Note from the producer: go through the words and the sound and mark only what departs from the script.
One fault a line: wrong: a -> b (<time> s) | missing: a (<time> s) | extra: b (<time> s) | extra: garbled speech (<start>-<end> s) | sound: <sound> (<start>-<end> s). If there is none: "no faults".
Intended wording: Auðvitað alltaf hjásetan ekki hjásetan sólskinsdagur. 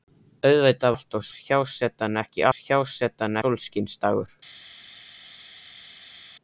no faults